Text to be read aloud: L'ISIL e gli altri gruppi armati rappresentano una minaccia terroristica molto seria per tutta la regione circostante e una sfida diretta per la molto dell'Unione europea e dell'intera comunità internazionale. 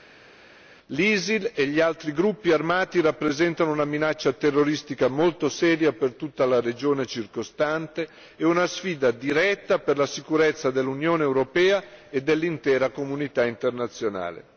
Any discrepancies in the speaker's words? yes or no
yes